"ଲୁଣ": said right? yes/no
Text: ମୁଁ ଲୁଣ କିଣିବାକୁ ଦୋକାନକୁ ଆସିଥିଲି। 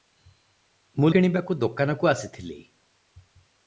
no